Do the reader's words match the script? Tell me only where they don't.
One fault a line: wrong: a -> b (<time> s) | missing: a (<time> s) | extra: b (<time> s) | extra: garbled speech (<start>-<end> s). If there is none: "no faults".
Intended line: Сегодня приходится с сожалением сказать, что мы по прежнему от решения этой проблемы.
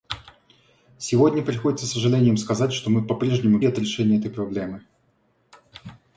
no faults